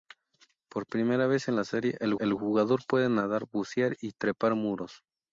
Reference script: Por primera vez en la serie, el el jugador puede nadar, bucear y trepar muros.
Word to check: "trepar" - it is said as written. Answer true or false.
true